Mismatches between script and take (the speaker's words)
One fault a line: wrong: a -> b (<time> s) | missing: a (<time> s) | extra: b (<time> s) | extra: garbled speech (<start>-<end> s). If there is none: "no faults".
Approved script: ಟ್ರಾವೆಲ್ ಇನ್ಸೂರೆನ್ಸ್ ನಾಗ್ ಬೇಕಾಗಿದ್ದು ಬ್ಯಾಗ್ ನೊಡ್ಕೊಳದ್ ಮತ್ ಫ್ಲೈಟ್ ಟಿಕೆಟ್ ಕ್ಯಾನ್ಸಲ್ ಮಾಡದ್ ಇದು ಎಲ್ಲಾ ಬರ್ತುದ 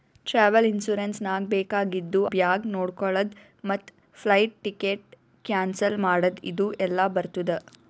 no faults